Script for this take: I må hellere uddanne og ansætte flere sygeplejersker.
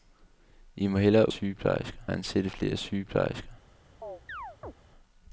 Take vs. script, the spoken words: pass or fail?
fail